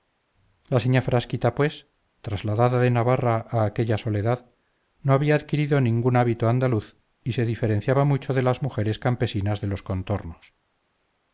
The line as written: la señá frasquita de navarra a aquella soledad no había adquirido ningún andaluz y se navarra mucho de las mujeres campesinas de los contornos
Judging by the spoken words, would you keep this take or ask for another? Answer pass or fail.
fail